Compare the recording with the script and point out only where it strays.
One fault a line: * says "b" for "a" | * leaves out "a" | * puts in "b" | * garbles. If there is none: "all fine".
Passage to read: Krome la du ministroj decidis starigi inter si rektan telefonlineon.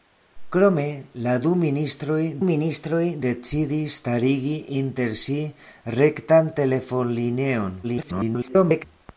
* puts in "ministroj"
* garbles